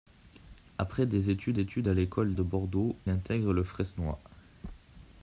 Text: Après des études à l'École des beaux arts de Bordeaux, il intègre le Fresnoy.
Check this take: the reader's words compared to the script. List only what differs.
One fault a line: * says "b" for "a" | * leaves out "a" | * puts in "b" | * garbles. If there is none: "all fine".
* puts in "études"
* leaves out "des beaux arts"
* leaves out "il"